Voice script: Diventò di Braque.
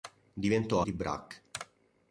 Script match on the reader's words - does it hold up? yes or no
yes